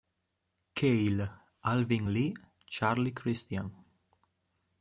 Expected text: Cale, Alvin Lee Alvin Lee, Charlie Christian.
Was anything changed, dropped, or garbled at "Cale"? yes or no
no